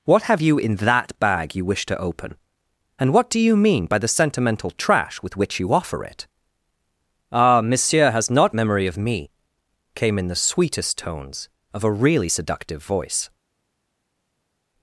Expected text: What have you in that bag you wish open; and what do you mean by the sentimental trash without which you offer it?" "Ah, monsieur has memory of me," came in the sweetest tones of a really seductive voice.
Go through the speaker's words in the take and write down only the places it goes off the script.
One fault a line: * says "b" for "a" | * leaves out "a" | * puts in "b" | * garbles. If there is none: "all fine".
* puts in "to"
* says "with" for "without"
* puts in "not"